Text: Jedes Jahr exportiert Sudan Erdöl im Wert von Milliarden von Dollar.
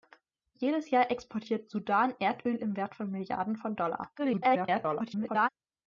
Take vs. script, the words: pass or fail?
fail